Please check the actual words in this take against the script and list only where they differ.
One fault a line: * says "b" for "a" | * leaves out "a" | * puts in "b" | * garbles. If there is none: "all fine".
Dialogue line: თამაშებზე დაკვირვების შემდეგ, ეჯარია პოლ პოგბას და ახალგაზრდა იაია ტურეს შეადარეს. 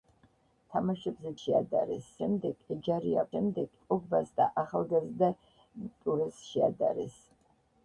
* says "შეადარეს" for "დაკვირვების"
* says "შემდეგ" for "პოლ"
* leaves out "იაია"